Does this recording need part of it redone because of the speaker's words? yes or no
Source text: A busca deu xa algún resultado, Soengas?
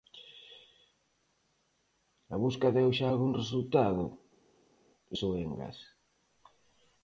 no